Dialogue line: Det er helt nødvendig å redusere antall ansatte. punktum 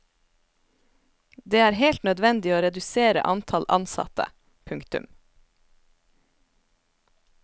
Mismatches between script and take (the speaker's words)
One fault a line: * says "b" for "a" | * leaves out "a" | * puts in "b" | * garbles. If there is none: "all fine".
all fine